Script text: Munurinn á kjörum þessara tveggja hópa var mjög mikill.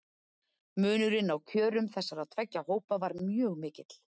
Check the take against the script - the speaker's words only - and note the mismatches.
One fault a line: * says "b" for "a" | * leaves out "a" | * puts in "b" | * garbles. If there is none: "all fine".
all fine